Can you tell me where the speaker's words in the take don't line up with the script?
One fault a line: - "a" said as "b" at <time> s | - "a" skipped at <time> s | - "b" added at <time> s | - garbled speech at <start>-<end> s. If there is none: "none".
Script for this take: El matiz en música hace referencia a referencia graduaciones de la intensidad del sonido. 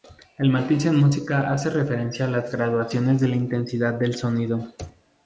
- "referencia" said as "las" at 2.3 s